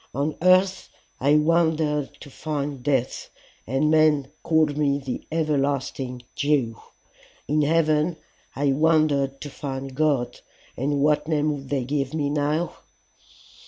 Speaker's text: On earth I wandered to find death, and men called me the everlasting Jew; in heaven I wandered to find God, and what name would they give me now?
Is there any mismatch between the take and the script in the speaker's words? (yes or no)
no